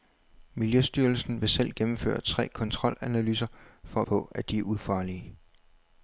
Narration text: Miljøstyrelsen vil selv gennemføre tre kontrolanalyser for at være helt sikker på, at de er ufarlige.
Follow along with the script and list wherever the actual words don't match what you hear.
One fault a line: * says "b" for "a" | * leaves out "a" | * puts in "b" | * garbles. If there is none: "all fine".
* leaves out "være helt sikker"